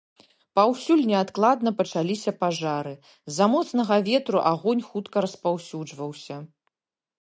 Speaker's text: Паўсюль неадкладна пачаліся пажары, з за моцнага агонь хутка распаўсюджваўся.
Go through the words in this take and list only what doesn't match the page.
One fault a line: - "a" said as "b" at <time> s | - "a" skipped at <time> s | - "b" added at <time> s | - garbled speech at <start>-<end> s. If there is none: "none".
- "ветру" added at 4.1 s